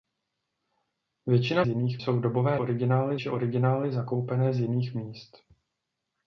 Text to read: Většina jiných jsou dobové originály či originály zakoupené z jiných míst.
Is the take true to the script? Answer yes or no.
yes